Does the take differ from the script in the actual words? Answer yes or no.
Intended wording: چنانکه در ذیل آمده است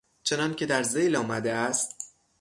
no